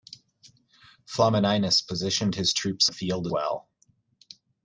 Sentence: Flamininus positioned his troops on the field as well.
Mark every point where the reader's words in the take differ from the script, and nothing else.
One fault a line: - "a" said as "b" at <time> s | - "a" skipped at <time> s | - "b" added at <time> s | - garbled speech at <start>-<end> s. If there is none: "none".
- "on" skipped at 2.9 s
- "as" skipped at 3.3 s